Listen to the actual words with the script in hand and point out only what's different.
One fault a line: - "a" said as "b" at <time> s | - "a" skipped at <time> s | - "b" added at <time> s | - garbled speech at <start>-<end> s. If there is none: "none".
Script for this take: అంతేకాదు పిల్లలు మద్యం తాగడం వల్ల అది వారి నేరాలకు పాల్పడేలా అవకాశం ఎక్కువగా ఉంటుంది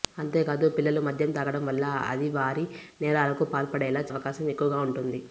none